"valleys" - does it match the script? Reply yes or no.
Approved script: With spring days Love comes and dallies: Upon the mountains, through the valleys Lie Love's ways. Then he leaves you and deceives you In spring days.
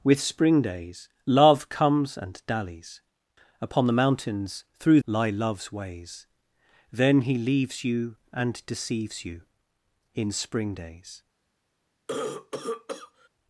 no